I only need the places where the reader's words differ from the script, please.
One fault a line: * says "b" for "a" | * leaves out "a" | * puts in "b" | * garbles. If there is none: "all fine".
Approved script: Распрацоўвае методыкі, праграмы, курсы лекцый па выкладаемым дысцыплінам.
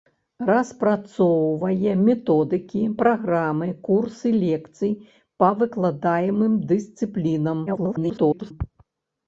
* garbles